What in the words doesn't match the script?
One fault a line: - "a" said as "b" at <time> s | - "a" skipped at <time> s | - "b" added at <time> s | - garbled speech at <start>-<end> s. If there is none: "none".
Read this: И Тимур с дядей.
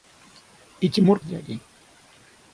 none